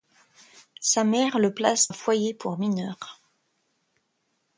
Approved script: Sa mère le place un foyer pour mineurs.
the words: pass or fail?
pass